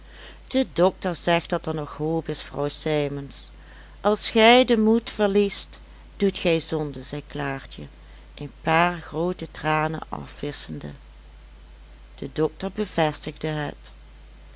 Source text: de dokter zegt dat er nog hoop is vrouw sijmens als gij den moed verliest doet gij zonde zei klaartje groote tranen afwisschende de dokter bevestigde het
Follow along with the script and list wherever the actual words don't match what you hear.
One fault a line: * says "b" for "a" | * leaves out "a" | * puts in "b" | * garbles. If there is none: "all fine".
* puts in "een paar"